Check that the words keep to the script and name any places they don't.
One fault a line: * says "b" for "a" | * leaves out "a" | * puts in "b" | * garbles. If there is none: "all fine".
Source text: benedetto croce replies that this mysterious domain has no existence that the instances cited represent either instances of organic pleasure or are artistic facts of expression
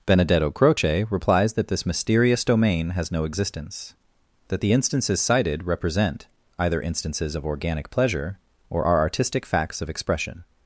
all fine